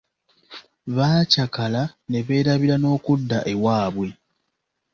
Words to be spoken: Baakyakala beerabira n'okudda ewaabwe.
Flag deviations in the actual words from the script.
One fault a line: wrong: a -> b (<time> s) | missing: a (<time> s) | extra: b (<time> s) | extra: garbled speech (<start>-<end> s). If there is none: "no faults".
extra: ne (2.1 s)